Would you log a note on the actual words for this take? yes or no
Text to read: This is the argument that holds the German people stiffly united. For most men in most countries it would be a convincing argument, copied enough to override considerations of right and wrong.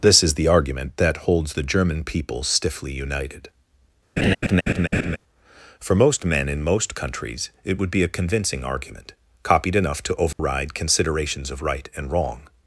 no